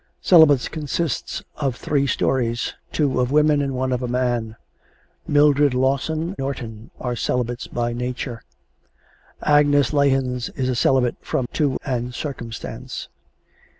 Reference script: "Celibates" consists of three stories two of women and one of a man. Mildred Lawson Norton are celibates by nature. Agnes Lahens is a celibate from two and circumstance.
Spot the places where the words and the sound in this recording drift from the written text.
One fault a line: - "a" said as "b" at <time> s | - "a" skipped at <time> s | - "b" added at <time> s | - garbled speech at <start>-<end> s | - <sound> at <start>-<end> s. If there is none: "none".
none